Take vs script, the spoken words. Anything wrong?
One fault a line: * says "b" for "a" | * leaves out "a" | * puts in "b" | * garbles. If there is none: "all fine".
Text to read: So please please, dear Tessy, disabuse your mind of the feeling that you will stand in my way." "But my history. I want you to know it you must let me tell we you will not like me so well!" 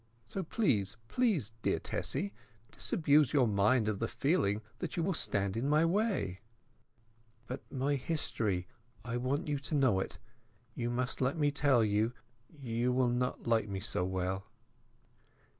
* says "you" for "we"